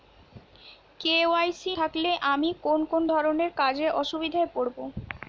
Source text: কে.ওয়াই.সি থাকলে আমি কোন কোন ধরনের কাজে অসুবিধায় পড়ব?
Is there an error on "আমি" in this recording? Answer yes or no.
no